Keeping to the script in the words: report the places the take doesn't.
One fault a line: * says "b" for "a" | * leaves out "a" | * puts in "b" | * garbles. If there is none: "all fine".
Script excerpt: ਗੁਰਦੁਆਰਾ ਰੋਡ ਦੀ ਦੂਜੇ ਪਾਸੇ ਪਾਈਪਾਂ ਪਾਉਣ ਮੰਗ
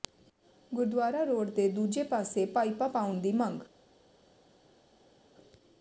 * says "ਦੇ" for "ਦੀ"
* puts in "ਦੀ"